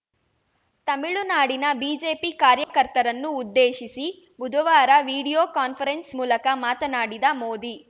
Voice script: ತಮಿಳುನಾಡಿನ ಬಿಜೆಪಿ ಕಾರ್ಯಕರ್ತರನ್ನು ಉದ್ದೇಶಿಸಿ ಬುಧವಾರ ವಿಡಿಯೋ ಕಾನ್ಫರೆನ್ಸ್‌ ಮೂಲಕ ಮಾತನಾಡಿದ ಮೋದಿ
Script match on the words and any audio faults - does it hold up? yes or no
no